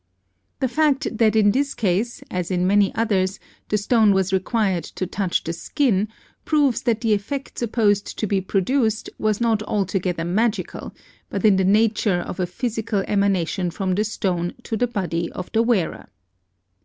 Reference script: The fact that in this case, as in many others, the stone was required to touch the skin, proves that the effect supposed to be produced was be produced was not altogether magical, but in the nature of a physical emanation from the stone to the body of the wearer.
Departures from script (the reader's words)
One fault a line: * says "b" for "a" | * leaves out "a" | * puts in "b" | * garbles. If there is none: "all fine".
* leaves out "be produced was"